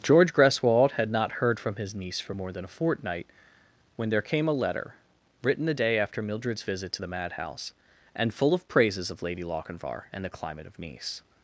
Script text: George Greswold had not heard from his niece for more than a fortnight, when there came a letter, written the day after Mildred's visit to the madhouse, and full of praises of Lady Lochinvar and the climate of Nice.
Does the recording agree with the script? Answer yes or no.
yes